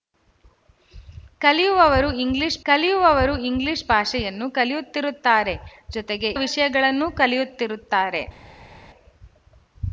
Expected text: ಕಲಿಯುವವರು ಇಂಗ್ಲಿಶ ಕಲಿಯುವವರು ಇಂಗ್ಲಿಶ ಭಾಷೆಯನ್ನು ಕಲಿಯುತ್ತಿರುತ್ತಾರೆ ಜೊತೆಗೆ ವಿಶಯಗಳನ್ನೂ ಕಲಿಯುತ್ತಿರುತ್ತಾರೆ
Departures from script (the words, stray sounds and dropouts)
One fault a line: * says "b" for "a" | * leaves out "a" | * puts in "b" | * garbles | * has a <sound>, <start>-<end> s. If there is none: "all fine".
all fine